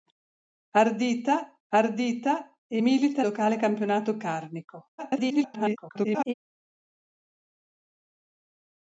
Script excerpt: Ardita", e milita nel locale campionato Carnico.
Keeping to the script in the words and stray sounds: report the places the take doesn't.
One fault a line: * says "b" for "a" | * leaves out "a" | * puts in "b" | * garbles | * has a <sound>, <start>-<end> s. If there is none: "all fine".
* puts in "ardita"
* leaves out "nel"
* garbles